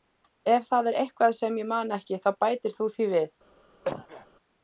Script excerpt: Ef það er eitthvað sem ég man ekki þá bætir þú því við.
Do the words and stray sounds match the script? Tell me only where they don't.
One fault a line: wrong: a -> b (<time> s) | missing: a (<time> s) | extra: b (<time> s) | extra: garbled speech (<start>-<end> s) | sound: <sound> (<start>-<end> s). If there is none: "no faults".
sound: cough (3.8-4.3 s)